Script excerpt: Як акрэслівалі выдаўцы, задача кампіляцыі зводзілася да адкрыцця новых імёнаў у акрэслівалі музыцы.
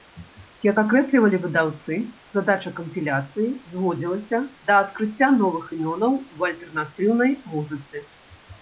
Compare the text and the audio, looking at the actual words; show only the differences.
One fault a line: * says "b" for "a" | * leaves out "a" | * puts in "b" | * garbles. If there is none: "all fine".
* says "альтэрнатыўнай" for "акрэслівалі"